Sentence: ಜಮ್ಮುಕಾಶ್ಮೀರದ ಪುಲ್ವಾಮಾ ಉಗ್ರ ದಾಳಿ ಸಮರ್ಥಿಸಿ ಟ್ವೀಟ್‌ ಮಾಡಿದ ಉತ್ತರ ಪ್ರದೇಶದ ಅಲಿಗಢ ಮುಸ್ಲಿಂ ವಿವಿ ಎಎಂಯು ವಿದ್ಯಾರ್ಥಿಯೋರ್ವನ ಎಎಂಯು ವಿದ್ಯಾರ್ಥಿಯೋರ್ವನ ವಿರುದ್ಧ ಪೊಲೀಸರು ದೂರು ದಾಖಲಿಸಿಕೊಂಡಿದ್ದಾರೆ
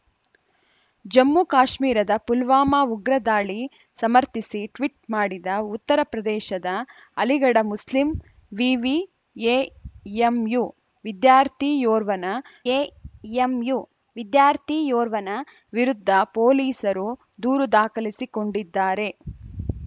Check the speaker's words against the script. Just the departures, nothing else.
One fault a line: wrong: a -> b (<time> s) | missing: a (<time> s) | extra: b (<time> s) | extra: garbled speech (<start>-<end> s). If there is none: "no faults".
no faults